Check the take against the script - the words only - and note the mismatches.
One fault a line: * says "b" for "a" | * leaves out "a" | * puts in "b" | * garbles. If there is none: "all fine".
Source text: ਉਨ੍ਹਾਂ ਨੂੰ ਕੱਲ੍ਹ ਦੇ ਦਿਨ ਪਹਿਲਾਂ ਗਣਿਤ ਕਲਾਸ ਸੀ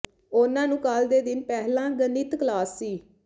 all fine